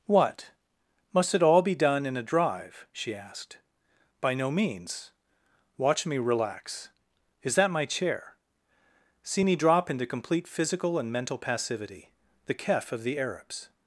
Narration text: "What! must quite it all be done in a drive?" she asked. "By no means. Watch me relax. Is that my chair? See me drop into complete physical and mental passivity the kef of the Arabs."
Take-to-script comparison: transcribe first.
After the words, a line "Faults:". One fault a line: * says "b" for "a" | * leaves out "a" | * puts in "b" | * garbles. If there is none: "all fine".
"What! must it all be done in a drive?" she asked. "By no means. Watch me relax. Is that my chair? See me drop into complete physical and mental passivity the kef of the Arabs."
Faults:
* leaves out "quite"